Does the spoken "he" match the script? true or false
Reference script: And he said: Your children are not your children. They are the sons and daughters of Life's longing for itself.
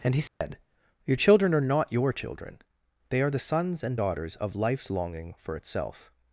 true